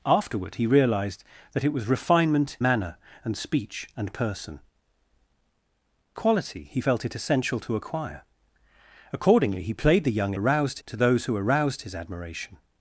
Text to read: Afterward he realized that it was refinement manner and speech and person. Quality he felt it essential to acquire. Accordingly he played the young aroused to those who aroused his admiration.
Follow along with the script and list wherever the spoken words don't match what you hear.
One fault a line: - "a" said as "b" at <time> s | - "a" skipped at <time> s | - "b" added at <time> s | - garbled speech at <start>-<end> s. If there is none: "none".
none